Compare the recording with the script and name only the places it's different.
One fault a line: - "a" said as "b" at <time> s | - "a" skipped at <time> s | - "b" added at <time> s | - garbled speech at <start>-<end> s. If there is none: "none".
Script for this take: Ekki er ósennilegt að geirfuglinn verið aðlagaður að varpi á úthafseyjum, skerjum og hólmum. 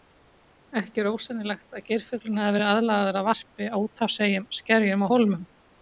- "hafi" added at 2.5 s